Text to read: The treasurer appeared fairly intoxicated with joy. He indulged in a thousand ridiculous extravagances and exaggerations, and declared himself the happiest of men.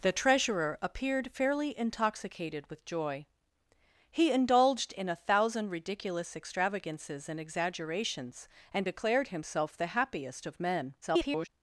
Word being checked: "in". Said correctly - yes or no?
yes